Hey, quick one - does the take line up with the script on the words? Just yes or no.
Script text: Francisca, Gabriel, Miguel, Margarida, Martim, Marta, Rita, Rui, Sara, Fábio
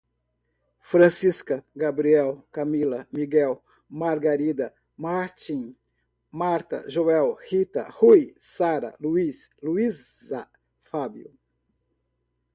no